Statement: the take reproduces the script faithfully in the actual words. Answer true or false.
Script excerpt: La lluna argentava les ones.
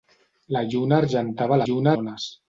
false